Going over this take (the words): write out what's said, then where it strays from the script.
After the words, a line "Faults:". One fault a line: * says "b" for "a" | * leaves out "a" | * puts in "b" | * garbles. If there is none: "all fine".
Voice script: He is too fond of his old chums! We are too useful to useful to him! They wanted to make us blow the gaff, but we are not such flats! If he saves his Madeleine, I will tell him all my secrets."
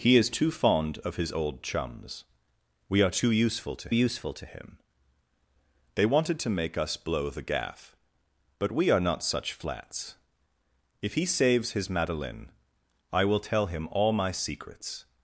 He is too fond of his old chums! We are too useful to useful to him! They wanted to make us blow the gaff, but we are not such flats! If he saves his Madeleine, I will tell him all my secrets."
Faults:
all fine